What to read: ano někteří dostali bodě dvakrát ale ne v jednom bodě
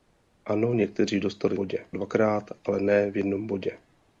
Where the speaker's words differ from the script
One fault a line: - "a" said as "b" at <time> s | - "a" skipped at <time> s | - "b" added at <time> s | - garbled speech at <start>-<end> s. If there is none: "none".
none